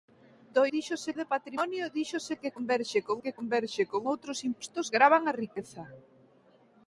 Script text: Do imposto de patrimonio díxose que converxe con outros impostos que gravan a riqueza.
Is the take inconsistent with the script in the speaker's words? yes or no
yes